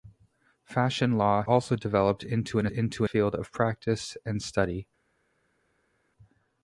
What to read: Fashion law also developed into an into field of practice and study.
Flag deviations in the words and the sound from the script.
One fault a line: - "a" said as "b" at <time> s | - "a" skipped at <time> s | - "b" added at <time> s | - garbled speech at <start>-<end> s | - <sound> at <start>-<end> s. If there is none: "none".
none